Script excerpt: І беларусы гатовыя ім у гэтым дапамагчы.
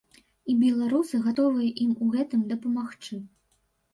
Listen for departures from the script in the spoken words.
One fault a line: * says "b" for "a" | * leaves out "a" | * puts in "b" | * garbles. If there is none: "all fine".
all fine